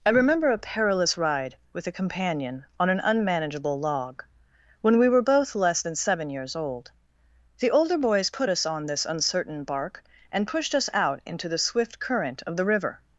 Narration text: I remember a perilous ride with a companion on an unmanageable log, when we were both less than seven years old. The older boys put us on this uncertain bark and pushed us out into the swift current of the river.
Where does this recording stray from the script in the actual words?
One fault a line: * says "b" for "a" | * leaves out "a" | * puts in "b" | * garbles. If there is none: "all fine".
all fine